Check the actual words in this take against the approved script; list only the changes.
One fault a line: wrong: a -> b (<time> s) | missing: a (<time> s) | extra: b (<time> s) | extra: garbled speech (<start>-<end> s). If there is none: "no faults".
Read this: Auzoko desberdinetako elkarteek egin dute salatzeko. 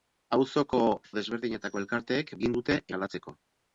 no faults